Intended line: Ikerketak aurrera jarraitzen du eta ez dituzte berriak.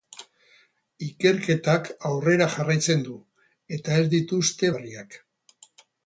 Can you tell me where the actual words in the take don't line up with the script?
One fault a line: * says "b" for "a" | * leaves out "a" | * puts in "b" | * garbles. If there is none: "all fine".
all fine